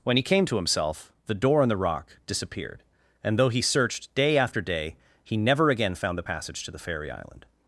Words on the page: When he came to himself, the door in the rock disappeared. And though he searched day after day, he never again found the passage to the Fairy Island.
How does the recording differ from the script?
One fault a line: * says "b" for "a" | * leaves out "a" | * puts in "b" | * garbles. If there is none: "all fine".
all fine